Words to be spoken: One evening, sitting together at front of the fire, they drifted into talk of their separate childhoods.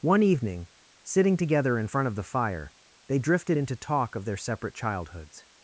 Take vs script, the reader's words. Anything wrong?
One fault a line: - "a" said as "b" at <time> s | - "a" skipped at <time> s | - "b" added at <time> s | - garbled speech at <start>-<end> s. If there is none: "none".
- "at" said as "in" at 1.8 s